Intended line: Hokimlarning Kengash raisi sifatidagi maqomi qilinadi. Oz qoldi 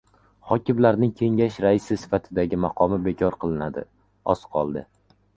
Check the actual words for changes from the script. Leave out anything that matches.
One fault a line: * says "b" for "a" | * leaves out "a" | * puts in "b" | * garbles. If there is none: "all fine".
* puts in "bekor"